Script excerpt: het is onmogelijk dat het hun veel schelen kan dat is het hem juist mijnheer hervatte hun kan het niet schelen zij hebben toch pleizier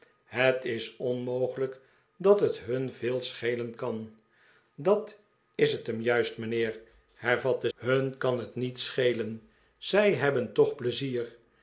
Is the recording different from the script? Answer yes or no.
no